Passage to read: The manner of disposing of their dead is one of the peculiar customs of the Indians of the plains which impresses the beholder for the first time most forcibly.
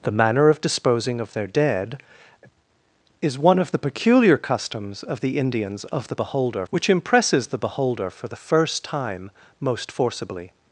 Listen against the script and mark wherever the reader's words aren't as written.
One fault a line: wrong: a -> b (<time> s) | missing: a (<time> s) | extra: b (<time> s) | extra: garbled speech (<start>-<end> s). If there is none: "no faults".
wrong: plains -> beholder (6.1 s)